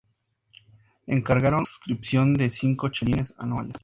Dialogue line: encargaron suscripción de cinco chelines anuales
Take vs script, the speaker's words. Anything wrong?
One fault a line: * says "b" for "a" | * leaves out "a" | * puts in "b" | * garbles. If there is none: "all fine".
all fine